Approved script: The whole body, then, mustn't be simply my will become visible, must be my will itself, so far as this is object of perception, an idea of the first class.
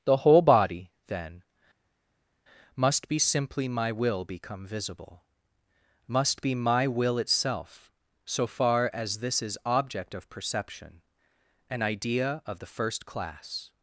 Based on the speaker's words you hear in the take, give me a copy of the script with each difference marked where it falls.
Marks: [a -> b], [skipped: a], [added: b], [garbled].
The whole body, then, [mustn't -> must] be simply my will become visible, must be my will itself, so far as this is object of perception, an idea of the first class.